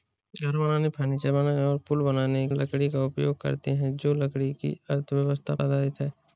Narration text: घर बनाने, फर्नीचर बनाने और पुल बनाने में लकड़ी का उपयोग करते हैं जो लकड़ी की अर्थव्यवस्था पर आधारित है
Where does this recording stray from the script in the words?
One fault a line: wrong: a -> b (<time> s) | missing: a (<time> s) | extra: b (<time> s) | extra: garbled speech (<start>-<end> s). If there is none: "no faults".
missing: में (2.5 s)
missing: पर (5.6 s)